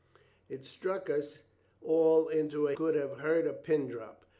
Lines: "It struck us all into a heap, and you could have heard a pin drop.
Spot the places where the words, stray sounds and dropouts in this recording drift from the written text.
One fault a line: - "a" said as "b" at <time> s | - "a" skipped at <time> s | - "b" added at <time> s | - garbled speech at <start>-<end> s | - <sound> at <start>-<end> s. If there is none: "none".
- "heap and you" skipped at 2.7 s